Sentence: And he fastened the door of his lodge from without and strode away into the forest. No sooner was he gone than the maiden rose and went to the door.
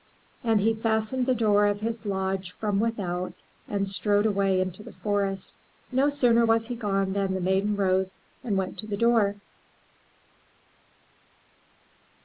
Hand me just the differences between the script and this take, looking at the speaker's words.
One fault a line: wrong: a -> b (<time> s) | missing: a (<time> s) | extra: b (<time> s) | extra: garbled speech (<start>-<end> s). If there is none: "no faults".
no faults